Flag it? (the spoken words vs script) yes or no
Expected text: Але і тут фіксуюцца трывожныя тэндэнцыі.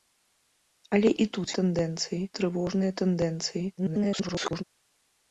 yes